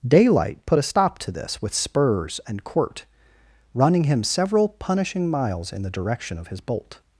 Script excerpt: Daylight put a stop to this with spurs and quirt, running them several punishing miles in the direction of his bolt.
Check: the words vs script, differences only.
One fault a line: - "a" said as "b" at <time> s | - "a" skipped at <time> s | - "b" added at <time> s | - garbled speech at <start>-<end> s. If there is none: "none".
- "them" said as "him" at 4.0 s